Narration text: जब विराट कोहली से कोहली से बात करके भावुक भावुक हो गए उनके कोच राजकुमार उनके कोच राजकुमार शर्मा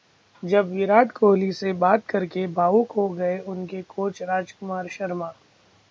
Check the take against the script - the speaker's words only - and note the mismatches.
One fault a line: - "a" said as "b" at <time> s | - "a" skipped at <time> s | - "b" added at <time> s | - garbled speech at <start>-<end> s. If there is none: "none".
- "कोहली से" skipped at 1.7 s
- "भावुक" skipped at 2.9 s
- "उनके कोच राजकुमार" skipped at 4.9 s